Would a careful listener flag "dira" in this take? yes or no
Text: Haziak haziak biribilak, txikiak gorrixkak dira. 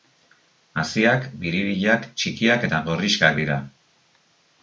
no